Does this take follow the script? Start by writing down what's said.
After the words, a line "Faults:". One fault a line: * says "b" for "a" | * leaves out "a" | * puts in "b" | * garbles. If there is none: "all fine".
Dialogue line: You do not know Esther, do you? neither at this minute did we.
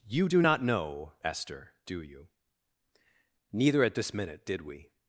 You do not know Esther, do you? neither at this minute did we.
Faults:
all fine